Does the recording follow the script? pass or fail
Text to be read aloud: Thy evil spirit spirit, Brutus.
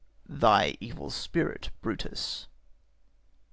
fail